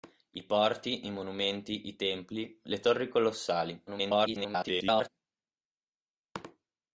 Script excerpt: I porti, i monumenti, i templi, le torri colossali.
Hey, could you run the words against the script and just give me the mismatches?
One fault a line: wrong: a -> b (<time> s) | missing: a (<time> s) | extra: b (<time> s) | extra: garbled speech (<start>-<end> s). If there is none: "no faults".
extra: garbled speech (3.9-5.1 s)